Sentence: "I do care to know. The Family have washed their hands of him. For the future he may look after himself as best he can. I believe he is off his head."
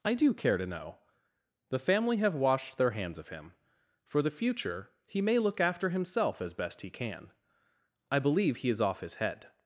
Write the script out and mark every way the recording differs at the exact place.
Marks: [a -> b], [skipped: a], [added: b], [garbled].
"I do care to know. The Family have washed their hands of him. For the future he may look after himself as best he can. I believe he is off his head."